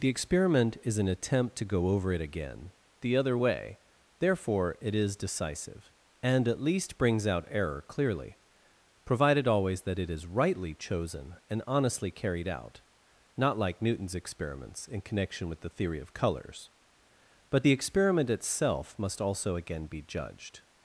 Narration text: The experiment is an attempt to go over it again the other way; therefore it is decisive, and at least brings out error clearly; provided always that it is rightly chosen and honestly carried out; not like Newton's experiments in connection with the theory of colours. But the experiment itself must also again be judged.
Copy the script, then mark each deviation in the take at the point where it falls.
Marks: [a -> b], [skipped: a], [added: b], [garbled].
The experiment is an attempt to go over it again the other way; therefore it is decisive, and at least brings out error clearly; provided always that it is rightly chosen and honestly carried out; not like Newton's experiments in connection with the theory of colours. But the experiment itself must also again be judged.